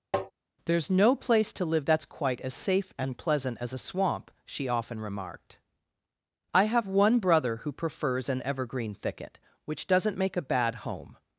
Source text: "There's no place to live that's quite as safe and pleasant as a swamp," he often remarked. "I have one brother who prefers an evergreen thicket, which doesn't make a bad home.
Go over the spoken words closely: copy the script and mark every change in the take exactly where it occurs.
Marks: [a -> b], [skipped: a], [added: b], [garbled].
"There's no place to live that's quite as safe and pleasant as a swamp," [he -> she] often remarked. "I have one brother who prefers an evergreen thicket, which doesn't make a bad home.